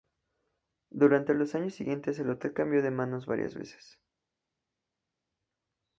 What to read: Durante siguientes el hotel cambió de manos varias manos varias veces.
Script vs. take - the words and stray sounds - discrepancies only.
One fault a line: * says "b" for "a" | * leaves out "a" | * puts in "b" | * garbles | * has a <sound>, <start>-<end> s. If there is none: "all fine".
* puts in "los años"
* leaves out "manos varias"